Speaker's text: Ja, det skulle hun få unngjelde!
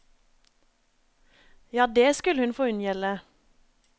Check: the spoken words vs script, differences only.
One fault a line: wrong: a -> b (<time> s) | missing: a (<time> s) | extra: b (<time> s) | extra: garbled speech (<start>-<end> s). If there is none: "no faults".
no faults